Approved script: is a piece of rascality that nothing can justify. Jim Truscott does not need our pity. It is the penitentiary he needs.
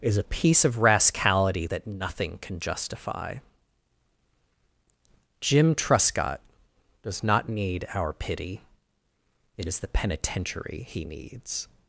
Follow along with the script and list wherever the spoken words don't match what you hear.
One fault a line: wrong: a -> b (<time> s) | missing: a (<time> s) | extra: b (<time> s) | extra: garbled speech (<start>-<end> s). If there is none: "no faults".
no faults